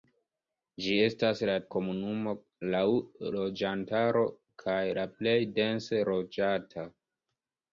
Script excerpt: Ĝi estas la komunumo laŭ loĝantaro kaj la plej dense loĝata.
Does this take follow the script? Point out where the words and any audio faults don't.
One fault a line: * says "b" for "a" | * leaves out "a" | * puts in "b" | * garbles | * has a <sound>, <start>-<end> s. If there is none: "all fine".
all fine